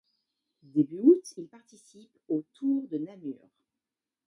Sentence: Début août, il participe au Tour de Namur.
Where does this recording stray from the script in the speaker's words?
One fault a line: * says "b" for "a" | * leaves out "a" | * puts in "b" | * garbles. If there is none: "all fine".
all fine